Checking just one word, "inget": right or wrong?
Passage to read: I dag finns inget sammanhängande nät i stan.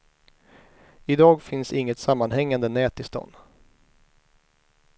right